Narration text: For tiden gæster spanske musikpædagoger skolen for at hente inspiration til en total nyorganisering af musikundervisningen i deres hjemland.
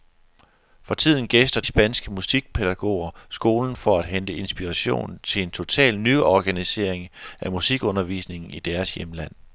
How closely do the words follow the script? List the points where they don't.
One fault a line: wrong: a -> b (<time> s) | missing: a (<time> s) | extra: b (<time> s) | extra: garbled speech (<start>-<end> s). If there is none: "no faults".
no faults